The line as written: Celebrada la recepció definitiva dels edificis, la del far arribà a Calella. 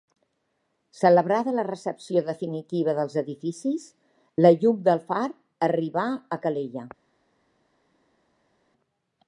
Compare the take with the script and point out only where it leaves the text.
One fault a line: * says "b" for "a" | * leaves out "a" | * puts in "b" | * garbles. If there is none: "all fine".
* puts in "llum"